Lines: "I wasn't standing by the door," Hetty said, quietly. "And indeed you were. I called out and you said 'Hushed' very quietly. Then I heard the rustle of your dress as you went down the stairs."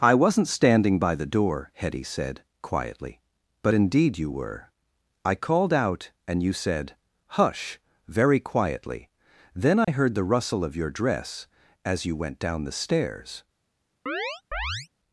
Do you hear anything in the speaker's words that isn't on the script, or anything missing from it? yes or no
yes